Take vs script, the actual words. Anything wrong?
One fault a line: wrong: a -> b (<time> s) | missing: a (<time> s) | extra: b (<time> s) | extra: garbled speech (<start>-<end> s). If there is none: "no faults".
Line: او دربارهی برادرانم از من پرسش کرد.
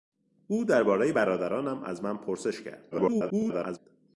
extra: garbled speech (2.9-3.8 s)